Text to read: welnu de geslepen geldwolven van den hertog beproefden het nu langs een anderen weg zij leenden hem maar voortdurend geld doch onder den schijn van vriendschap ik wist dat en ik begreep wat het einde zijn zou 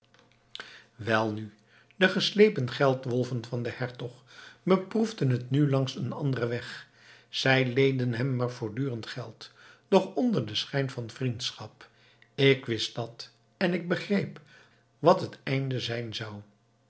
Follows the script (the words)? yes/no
yes